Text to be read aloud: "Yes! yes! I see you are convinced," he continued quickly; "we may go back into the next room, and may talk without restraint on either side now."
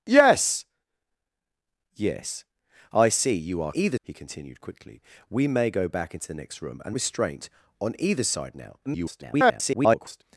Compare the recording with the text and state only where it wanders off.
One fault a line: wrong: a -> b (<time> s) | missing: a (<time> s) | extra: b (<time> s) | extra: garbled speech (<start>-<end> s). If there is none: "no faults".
wrong: convinced -> either (3.7 s)
missing: may talk without (7.0 s)
extra: garbled speech (8.9-10.2 s)